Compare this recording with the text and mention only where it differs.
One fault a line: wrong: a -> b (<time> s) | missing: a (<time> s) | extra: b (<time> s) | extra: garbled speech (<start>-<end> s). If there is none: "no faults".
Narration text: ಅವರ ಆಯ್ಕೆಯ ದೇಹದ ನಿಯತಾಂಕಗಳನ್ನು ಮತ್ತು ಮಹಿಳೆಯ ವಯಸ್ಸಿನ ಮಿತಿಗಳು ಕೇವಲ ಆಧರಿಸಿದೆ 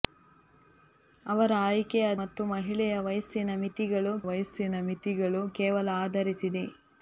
wrong: ದೇಹದ ನಿಯತಾಂಕಗಳನ್ನು ಮತ್ತು ಮಹಿಳೆಯ -> ಮತ್ತು ಮಹಿಳೆಯ ವಯಸ್ಸಿನ ಮಿತಿಗಳು (2.2 s)